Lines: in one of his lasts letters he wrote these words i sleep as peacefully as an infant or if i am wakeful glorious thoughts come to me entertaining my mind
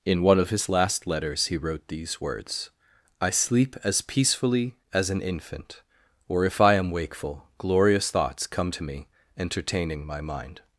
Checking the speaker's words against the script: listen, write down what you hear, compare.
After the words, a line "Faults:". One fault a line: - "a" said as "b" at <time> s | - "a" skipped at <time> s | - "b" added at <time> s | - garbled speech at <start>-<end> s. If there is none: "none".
in one of his last letters he wrote these words i sleep as peacefully as an infant or if i am wakeful glorious thoughts come to me entertaining my mind
Faults:
- "lasts" said as "last" at 0.7 s